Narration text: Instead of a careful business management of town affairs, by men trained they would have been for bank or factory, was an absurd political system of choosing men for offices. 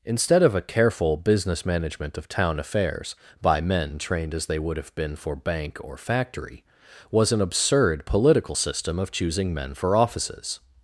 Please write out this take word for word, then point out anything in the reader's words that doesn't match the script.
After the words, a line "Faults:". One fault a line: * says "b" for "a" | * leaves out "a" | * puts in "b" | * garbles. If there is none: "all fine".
Instead of a careful business management of town affairs, by men trained as they would have been for bank or factory, was an absurd political system of choosing men for offices.
Faults:
* puts in "as"